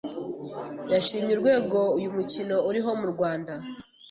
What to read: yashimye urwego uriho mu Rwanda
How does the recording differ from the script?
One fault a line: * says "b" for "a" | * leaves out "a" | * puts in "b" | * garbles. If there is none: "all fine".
* puts in "uyu mukino"